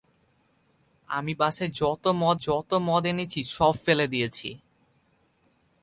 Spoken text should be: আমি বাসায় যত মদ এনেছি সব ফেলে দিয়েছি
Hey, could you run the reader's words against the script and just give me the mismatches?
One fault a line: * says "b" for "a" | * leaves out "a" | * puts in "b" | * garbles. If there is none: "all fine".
* puts in "যত মদ"